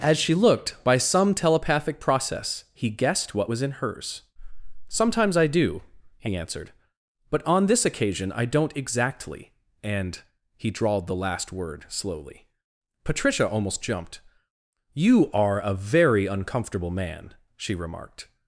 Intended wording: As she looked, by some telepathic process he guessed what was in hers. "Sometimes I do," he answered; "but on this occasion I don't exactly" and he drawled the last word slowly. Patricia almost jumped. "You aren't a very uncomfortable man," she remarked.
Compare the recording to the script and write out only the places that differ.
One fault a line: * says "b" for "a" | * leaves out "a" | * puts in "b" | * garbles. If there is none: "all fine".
* says "are" for "aren't"